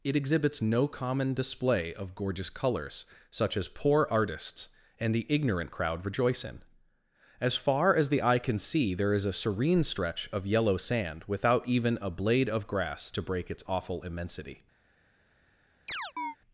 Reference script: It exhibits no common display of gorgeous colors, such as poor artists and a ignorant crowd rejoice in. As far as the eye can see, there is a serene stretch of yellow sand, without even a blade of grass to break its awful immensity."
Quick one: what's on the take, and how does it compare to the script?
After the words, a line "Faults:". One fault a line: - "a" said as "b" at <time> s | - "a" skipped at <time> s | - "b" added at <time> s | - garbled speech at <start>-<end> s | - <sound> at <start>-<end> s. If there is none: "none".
It exhibits no common display of gorgeous colors, such as poor artists and the ignorant crowd rejoice in. As far as the eye can see, there is a serene stretch of yellow sand, without even a blade of grass to break its awful immensity."
Faults:
- "a" said as "the" at 5.1 s
- chirp at 15.9-16.4 s